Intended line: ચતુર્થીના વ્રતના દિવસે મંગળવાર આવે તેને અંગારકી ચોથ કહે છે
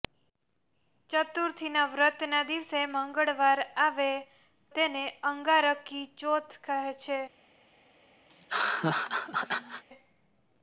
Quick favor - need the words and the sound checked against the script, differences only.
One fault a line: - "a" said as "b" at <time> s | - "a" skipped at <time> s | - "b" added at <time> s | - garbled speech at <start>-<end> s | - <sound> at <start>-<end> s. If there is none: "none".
- laugh at 8.3-9.8 s